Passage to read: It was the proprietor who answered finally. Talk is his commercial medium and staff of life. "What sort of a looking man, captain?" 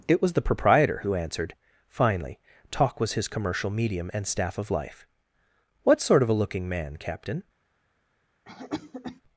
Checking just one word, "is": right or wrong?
wrong